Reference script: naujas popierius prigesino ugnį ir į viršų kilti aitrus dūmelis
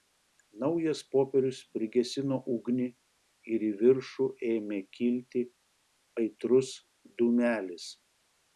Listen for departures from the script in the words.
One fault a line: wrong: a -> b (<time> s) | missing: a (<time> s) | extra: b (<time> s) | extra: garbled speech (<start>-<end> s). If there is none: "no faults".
extra: ėmė (4.5 s)